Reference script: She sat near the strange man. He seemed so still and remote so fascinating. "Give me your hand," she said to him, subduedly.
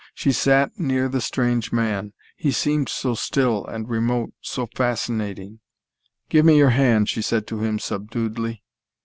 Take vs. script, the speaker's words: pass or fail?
pass